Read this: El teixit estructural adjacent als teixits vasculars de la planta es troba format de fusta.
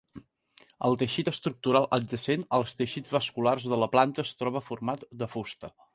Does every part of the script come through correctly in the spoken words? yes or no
yes